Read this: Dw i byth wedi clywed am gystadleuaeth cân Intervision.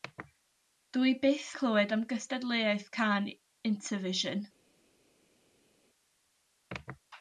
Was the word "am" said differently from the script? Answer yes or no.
no